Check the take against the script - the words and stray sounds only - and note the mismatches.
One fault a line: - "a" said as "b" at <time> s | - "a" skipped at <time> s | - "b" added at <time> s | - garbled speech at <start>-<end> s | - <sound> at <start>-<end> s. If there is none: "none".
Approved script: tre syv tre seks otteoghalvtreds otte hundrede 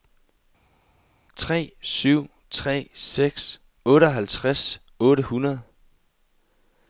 none